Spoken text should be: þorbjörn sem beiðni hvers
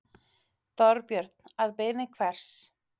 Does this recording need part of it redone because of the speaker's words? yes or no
yes